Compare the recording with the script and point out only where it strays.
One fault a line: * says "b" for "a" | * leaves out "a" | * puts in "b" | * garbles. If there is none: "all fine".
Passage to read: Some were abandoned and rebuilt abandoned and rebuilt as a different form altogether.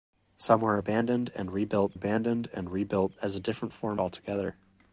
all fine